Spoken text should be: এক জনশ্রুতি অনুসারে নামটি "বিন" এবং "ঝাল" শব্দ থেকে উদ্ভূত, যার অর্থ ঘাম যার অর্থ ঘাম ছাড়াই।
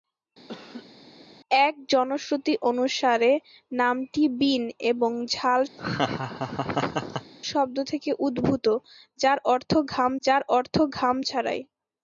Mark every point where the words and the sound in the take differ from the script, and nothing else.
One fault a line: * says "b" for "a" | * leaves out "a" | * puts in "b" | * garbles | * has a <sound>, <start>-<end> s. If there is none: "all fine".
* has a laugh, 0.5-0.9 s
* has a laugh, 5.8-7.3 s